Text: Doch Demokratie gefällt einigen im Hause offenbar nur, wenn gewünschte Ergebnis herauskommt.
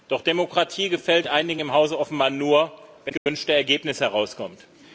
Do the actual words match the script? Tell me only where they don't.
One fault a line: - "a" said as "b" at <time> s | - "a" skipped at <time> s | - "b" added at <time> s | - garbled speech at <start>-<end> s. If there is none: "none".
none